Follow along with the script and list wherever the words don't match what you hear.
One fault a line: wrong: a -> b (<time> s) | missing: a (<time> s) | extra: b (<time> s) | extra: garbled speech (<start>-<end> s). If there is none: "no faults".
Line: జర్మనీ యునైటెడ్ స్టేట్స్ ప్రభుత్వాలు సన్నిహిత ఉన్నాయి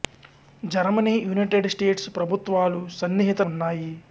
no faults